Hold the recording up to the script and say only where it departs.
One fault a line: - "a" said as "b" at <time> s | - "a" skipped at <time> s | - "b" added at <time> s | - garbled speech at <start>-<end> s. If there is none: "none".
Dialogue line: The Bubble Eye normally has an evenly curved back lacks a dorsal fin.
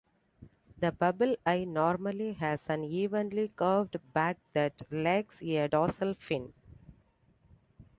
- "that" added at 4.5 s